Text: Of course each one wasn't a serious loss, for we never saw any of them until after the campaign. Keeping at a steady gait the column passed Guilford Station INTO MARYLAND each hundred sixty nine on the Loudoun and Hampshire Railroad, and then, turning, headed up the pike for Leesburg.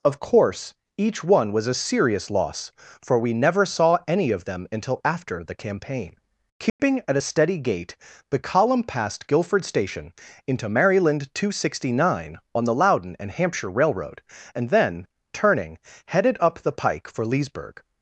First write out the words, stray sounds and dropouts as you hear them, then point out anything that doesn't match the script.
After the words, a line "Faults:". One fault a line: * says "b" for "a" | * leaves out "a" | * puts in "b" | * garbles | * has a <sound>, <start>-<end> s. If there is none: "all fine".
Of course each one was a serious loss, for we never saw any of them until after the campaign. Keeping at a steady gait the column passed Guilford Station INTO MARYLAND two hundred sixty nine on the Loudoun and Hampshire Railroad, and then, turning, headed up the pike for Leesburg.
Faults:
* says "was" for "wasn't"
* has a dropout, 6.7-6.8 s
* says "two" for "each"